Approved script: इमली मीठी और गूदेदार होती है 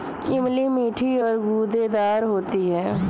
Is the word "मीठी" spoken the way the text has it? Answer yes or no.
yes